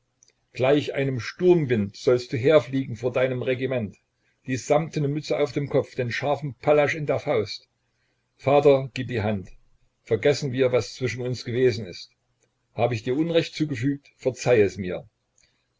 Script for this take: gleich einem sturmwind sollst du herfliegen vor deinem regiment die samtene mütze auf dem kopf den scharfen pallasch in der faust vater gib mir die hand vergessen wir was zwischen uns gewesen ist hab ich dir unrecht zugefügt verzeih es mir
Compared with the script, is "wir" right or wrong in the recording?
right